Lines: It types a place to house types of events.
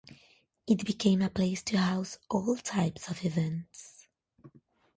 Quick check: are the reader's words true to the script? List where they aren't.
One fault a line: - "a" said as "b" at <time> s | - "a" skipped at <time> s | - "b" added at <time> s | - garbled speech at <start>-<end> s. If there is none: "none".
- "types" said as "became" at 0.8 s
- "all" added at 2.3 s